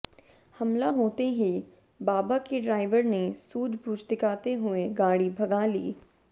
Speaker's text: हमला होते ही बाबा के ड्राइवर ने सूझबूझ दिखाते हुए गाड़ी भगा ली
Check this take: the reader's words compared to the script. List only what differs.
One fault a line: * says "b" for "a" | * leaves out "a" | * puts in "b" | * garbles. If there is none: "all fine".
all fine